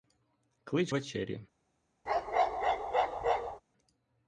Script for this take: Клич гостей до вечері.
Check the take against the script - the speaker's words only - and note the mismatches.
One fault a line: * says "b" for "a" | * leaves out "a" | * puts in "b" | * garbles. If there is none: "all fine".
* leaves out "гостей до"